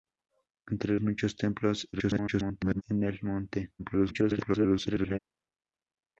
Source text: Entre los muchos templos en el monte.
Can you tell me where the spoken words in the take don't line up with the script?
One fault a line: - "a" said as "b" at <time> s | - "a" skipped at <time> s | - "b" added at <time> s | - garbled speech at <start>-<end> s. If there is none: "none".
- "los" skipped at 0.9 s
- garbled speech at 1.9-2.8 s
- garbled speech at 3.8-5.2 s